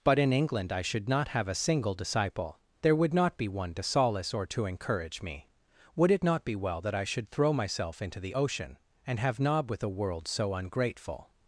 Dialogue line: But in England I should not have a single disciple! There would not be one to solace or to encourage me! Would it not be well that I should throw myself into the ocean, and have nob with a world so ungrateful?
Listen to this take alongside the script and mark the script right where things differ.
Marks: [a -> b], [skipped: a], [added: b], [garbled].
But in England I should not have a single disciple! There would not be one to solace or to encourage me! Would it not be well that I should throw myself into the ocean, and have nob with a world so ungrateful?